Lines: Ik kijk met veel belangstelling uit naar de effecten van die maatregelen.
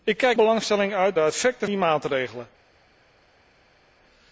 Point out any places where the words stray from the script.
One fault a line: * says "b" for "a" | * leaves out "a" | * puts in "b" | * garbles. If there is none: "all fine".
* leaves out "met veel"
* leaves out "naar"
* leaves out "van"